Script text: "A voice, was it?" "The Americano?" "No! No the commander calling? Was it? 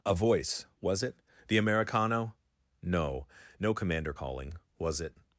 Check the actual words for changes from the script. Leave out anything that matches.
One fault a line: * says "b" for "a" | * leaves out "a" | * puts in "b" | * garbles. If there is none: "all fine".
* leaves out "the"